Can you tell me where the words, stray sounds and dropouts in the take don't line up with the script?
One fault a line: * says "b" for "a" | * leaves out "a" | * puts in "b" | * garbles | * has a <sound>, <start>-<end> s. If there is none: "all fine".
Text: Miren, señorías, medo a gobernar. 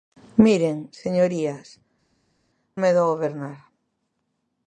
all fine